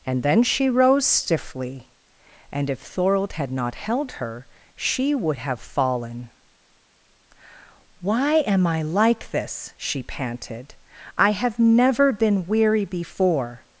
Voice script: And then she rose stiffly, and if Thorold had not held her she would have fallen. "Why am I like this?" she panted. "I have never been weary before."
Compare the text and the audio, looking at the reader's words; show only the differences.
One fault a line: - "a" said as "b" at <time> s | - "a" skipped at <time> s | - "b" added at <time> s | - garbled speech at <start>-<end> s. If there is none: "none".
none